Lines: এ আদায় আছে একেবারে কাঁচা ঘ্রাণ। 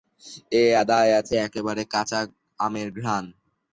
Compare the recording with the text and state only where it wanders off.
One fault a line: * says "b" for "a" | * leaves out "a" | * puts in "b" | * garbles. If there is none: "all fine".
* puts in "আমের"